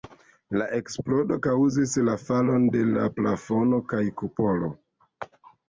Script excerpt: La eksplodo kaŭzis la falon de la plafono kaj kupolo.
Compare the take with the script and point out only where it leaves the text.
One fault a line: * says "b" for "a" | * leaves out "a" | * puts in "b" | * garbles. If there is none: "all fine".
all fine